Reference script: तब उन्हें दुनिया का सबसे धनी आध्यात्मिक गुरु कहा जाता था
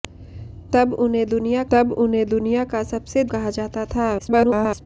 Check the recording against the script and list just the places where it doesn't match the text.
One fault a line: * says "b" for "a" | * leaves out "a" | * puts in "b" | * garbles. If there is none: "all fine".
* says "तब उन्हें दुनिया का सबसे" for "का सबसे धनी आध्यात्मिक गुरु"
* garbles